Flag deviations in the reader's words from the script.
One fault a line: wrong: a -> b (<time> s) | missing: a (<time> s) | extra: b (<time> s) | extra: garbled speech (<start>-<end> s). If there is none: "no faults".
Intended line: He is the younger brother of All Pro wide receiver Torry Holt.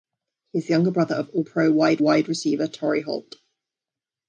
extra: wide (2.0 s)